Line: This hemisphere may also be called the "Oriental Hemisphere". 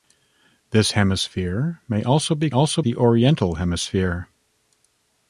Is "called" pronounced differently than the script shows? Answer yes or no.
yes